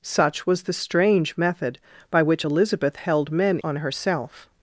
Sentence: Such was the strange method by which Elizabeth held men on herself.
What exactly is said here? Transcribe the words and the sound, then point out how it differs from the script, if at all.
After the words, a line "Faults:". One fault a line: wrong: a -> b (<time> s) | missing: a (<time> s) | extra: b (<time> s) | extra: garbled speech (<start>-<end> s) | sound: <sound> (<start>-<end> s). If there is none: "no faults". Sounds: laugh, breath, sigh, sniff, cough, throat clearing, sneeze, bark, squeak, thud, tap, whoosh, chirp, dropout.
Such was the strange method by which Elizabeth held men on herself.
Faults:
no faults